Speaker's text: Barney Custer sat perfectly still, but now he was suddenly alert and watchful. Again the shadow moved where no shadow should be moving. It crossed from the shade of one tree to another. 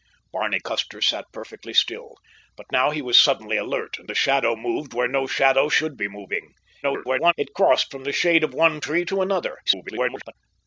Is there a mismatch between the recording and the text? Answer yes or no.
yes